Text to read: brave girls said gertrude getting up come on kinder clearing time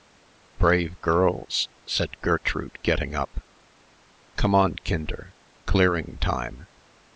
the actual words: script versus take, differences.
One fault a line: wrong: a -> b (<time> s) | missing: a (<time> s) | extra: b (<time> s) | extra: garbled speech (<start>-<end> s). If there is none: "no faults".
no faults